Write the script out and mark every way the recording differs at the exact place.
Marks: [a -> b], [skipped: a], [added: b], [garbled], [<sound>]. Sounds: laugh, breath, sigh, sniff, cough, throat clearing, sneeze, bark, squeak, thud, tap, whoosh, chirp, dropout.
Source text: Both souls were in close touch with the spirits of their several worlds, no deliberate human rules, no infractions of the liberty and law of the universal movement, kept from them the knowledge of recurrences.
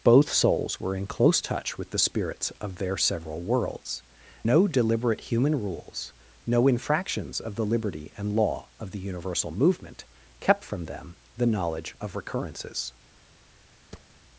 Both souls were in close touch with the spirits of their several worlds, no deliberate human rules, no infractions of the liberty and law of the universal movement, kept from them the knowledge of recurrences. [thud]